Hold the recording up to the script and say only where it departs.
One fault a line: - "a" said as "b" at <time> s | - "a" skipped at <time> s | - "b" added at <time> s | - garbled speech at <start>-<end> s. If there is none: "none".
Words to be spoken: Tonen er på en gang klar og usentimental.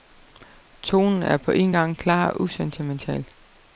none